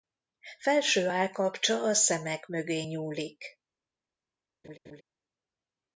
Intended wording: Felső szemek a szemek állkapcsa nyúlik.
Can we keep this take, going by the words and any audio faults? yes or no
no